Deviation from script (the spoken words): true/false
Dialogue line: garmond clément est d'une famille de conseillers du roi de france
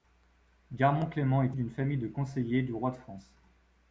false